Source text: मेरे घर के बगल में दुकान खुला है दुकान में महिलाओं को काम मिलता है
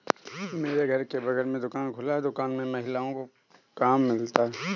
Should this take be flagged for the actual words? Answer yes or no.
no